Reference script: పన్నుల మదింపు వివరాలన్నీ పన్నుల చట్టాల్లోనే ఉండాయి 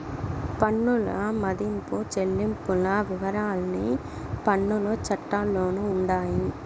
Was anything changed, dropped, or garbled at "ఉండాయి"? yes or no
no